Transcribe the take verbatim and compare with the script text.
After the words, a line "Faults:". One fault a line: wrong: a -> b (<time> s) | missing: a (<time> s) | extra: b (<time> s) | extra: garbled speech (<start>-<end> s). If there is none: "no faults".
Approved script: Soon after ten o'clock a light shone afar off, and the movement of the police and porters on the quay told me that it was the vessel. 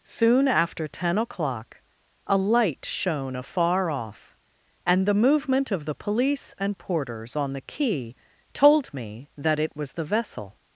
Soon after ten o'clock a light shone afar off, and the movement of the police and porters on the quay told me that it was the vessel.
Faults:
no faults